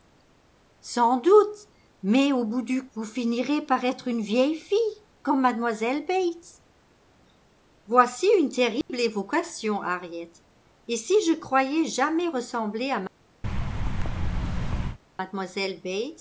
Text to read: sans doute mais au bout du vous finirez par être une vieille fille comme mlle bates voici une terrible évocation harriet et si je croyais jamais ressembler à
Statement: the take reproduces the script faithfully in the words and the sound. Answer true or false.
false